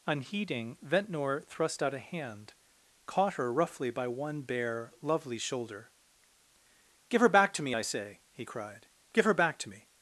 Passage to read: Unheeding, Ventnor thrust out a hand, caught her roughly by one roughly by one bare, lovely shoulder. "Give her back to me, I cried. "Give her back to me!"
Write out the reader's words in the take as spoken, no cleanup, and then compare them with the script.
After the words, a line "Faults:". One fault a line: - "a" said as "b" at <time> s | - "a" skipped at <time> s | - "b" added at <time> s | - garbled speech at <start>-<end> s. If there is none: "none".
Unheeding, Ventnor thrust out a hand, caught her roughly by one bare, lovely shoulder. "Give her back to me, I say!" he cried. "Give her back to me!"
Faults:
- "roughly by one" skipped at 4.4 s
- "say he" added at 7.8 s